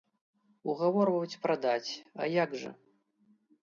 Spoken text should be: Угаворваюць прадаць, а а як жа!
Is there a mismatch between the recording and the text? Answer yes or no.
yes